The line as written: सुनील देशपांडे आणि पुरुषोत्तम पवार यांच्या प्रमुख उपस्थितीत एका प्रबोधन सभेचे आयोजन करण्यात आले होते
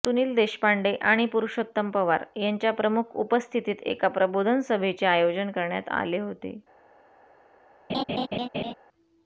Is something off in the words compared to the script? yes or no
no